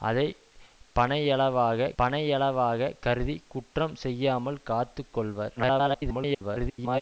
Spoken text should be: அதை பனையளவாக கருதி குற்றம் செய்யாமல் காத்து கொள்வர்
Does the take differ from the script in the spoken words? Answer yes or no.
yes